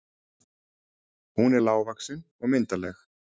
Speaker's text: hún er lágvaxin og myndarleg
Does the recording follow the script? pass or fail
pass